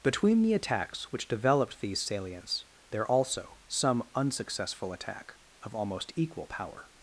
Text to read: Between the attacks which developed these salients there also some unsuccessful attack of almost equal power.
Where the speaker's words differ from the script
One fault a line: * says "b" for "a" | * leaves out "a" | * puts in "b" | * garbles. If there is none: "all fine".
all fine